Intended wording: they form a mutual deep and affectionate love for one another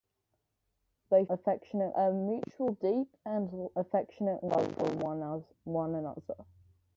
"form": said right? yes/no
no